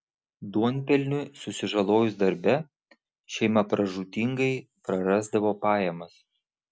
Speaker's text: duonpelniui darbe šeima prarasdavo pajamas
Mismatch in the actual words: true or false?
true